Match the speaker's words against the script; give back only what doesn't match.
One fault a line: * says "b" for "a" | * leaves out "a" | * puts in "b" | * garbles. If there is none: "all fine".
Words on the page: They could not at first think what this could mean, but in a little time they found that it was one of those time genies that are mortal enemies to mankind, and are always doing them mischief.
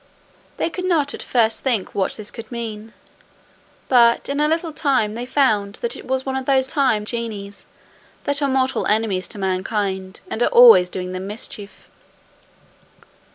all fine